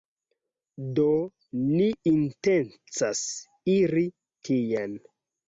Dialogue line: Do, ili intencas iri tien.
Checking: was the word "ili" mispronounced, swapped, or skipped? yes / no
yes